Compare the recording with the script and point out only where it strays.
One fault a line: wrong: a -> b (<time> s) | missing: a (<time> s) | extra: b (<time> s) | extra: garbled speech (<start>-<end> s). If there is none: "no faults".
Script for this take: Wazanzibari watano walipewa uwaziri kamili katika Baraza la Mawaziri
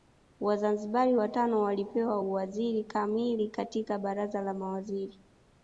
no faults